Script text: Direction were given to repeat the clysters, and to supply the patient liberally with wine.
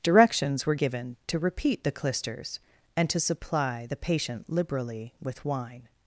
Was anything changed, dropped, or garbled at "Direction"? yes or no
yes